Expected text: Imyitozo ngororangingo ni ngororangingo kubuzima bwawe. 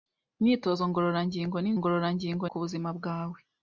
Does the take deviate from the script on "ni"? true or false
false